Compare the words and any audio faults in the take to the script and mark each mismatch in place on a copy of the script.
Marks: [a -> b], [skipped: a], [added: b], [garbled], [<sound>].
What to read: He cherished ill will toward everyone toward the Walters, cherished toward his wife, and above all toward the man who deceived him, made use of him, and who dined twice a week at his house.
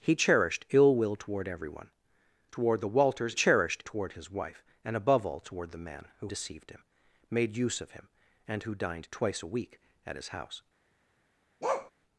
He cherished ill will toward everyone toward the Walters, cherished toward his wife, and above all toward the man who deceived him, made use of him, and who dined twice a week at his house. [bark]